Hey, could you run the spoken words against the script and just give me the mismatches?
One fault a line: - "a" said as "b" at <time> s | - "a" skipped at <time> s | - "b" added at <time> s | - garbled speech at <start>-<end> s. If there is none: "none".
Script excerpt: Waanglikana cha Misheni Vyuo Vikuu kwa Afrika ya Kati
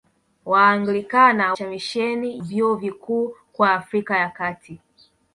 none